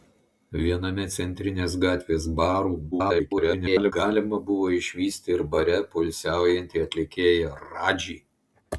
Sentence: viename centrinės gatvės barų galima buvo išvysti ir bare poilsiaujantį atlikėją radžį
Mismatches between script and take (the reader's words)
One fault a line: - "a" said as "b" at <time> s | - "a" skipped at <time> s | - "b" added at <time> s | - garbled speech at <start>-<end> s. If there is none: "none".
- garbled speech at 2.9-3.9 s